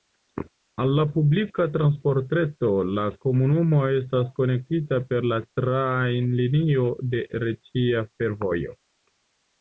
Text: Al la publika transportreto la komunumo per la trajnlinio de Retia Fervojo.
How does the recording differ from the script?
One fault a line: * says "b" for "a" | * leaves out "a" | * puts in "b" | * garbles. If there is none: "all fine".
* puts in "estas konektita"